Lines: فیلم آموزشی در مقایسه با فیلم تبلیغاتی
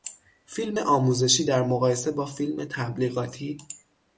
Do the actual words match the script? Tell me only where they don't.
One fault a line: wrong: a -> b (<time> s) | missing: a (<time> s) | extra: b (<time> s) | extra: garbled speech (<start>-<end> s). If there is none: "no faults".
no faults